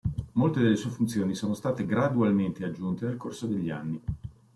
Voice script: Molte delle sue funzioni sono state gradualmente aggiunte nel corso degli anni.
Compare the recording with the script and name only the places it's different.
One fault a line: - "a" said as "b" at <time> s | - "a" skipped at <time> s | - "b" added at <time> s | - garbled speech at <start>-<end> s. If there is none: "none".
none